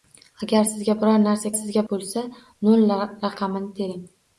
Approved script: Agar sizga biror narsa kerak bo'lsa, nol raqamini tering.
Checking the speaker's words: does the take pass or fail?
fail